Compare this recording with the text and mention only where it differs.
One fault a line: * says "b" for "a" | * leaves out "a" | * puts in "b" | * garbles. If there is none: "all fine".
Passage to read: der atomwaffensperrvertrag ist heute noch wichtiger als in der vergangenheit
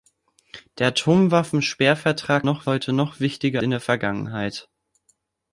* says "noch" for "ist"
* leaves out "als"